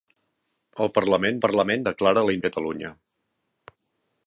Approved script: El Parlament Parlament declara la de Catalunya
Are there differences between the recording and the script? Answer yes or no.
no